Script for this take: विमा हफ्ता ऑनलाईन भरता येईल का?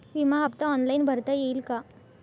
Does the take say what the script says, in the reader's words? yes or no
yes